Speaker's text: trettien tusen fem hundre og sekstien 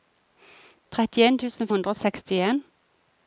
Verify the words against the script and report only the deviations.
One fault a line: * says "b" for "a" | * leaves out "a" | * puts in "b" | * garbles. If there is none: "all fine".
* leaves out "fem"